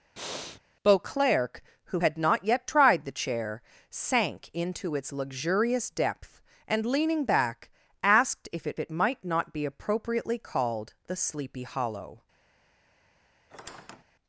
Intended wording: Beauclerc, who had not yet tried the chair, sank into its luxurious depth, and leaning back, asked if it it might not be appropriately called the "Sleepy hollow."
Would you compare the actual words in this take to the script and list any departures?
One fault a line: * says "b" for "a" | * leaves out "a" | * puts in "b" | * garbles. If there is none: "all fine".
all fine